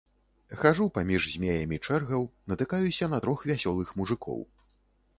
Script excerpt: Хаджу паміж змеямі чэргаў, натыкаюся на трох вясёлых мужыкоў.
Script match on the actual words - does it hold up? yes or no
yes